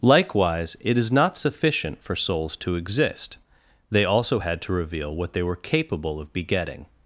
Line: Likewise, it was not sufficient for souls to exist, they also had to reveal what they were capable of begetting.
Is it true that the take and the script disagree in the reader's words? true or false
true